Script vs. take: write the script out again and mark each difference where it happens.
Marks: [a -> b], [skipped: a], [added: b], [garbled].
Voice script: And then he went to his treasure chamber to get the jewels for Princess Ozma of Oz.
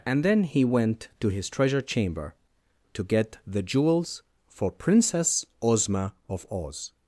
And then he went to his treasure chamber to get the jewels for Princess Ozma of Oz.